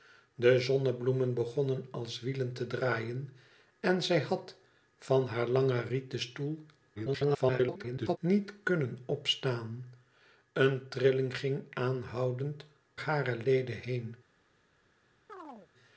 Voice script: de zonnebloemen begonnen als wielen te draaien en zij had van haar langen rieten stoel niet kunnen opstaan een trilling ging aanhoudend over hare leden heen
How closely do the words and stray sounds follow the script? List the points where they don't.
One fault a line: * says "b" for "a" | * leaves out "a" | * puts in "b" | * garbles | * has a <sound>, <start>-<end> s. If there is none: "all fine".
* garbles
* leaves out "over"
* has a chirp, 15.3-15.7 s